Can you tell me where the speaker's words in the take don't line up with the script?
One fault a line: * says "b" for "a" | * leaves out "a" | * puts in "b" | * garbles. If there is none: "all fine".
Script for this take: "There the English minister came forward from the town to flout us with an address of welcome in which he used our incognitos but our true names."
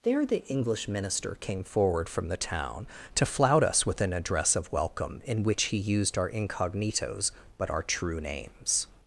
all fine